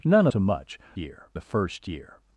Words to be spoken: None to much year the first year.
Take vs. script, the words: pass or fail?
pass